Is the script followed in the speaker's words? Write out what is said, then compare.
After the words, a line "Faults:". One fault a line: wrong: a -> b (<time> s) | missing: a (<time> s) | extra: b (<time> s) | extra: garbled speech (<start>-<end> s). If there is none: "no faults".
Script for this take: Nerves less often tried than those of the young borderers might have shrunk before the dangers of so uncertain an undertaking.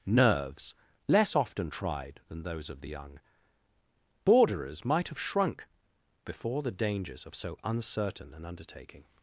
Nerves less often tried than those of the young borderers might have shrunk before the dangers of so uncertain an undertaking.
Faults:
no faults